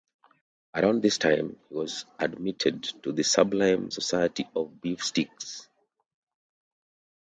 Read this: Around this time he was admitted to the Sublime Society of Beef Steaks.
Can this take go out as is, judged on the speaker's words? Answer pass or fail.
pass